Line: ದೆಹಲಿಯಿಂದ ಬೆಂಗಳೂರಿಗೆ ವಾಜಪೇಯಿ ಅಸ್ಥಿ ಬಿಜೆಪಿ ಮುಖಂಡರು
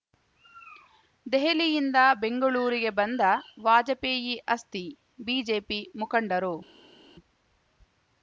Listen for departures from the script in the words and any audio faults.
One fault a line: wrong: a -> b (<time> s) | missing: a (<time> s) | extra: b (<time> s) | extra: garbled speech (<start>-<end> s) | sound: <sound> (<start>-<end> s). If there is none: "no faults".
extra: ಬಂದ (3.0 s)